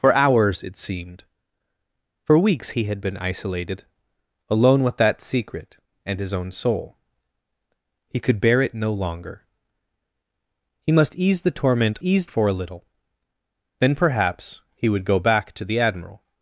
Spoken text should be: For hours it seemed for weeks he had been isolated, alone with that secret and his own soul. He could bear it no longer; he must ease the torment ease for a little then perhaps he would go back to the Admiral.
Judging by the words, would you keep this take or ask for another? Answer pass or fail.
pass